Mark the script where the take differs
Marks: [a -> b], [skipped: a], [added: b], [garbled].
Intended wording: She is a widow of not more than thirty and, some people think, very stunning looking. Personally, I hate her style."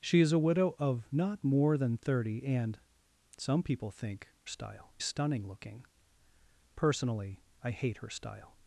She is a widow of not more than thirty and, some people think, [very -> style] stunning looking. Personally, I hate her style."